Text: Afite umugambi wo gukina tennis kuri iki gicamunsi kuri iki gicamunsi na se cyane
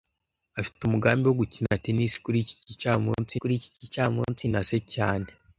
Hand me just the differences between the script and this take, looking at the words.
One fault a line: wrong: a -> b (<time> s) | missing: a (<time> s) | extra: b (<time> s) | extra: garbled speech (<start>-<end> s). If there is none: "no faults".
no faults